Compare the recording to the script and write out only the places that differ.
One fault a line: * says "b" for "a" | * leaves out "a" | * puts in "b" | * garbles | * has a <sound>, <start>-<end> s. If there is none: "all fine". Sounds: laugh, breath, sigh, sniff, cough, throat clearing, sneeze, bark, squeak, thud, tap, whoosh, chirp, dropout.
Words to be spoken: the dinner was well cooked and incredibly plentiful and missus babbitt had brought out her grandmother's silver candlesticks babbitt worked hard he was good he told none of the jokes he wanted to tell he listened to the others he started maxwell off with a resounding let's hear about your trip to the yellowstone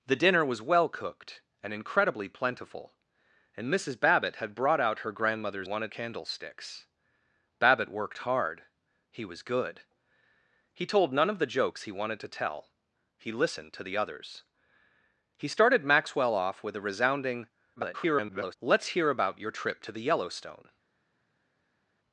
* says "wanted" for "silver"
* garbles